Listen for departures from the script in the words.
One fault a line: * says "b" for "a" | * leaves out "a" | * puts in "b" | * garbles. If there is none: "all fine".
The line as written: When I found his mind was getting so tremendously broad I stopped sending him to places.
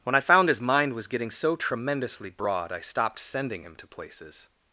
all fine